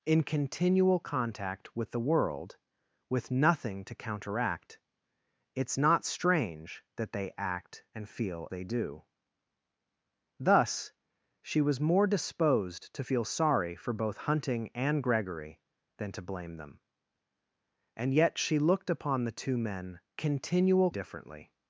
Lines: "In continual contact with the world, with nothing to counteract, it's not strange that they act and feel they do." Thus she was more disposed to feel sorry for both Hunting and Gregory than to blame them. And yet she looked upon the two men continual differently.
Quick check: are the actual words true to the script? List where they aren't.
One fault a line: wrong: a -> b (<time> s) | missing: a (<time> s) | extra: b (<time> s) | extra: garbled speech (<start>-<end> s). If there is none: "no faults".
no faults